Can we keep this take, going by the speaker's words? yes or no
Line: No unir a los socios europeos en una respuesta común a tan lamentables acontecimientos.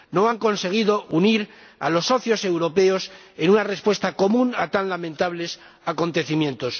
no